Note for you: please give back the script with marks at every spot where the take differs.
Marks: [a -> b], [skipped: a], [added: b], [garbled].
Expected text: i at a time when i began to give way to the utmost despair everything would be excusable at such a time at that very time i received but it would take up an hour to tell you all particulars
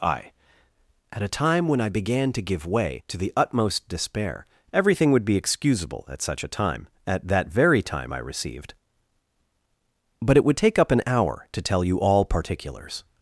i at a time when i began to give way to the utmost despair everything would be excusable at such a time at that very time i received but it would take up an hour to tell you all particulars